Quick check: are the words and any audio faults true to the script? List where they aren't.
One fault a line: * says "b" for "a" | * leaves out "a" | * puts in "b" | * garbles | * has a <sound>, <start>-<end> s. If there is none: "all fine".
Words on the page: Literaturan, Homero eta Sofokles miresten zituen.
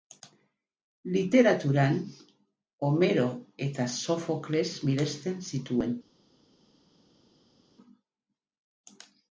all fine